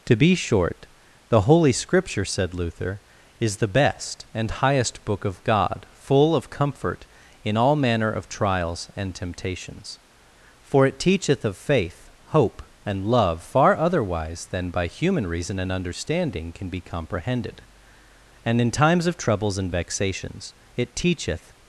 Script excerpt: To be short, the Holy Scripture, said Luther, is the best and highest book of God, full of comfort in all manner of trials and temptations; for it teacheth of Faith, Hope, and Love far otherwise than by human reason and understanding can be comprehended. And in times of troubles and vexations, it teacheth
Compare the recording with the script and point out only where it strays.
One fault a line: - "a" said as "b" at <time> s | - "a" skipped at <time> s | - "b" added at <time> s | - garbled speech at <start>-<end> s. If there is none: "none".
none